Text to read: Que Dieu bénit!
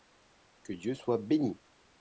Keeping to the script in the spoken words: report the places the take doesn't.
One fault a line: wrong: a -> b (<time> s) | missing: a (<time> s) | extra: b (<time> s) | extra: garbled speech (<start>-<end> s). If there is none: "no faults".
extra: soit (0.9 s)